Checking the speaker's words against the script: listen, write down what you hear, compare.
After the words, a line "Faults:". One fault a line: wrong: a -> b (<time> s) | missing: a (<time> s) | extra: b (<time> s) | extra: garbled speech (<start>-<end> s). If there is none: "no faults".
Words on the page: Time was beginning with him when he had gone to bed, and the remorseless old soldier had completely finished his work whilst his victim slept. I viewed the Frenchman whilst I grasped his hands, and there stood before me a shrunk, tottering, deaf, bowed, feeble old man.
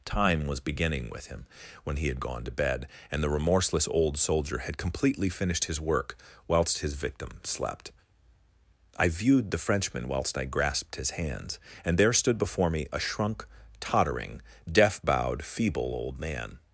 Time was beginning with him when he had gone to bed, and the remorseless old soldier had completely finished his work whilst his victim slept. I viewed the Frenchman whilst I grasped his hands, and there stood before me a shrunk, tottering, deaf, bowed, feeble old man.
Faults:
no faults